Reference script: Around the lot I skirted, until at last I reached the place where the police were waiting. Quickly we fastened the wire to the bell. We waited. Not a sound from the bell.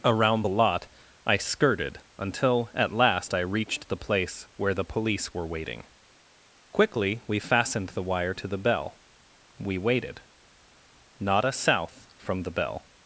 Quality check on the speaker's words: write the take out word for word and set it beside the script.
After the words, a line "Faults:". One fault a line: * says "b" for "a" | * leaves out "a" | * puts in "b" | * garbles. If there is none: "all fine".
Around the lot I skirted, until at last I reached the place where the police were waiting. Quickly we fastened the wire to the bell. We waited. Not a south from the bell.
Faults:
* says "south" for "sound"